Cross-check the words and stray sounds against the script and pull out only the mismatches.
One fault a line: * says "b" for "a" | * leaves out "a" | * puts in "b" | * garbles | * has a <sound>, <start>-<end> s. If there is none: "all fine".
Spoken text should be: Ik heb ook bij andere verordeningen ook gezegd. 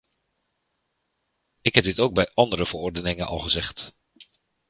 * puts in "dit"
* says "al" for "ook"